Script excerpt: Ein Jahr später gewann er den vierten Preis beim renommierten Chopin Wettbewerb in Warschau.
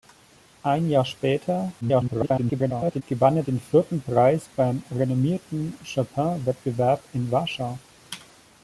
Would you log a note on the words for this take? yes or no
yes